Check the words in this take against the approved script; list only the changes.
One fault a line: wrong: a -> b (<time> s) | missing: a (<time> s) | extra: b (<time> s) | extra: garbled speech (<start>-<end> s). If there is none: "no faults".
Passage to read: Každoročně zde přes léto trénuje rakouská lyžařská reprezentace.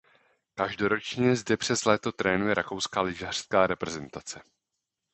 no faults